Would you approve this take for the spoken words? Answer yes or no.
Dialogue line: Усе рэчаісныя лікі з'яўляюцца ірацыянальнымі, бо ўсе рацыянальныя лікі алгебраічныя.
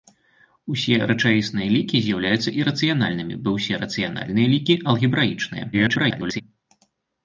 no